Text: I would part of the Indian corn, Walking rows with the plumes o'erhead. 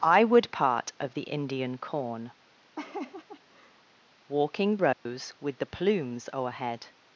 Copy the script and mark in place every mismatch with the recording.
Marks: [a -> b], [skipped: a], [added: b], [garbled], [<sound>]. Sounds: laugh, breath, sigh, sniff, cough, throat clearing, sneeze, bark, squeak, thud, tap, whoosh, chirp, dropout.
I would part of the Indian corn, [laugh] Walking rows [dropout] with the plumes o'erhead.